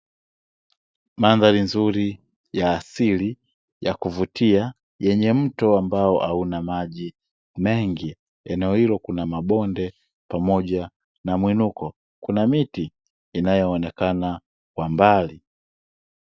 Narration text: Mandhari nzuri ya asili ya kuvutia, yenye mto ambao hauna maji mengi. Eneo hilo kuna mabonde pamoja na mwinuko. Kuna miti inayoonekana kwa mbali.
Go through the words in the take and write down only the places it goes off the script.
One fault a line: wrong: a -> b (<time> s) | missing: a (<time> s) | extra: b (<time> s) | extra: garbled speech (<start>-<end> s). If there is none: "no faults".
no faults